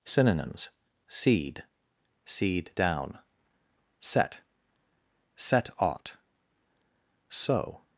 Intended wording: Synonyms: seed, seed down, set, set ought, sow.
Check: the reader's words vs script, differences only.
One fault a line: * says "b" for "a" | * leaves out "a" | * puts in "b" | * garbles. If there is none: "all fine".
all fine